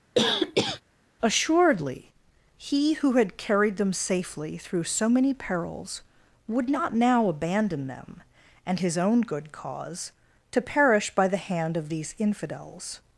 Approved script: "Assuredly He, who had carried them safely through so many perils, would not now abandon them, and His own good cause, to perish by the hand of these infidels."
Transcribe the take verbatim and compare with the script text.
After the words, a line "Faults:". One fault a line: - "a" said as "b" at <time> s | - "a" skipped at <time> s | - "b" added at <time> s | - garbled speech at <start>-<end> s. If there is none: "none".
"Assuredly He, who had carried them safely through so many perils, would not now abandon them, and His own good cause, to perish by the hand of these infidels."
Faults:
none